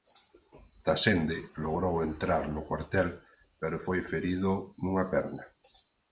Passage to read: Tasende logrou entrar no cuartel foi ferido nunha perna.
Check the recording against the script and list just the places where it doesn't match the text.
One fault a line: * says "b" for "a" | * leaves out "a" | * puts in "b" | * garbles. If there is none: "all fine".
* puts in "pero"